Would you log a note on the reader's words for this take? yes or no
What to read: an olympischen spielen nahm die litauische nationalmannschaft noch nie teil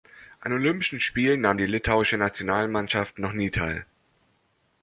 no